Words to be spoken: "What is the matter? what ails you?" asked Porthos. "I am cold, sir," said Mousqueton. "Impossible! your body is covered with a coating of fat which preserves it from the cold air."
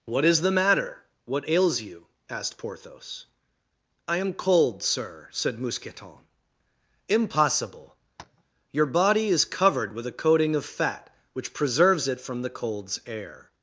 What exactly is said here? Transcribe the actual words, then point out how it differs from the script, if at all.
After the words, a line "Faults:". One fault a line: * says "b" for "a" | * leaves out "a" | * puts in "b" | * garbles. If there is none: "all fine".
"What is the matter? what ails you?" asked Porthos. "I am cold, sir," said Mousqueton. "Impossible! your body is covered with a coating of fat which preserves it from the colds air."
Faults:
* says "colds" for "cold"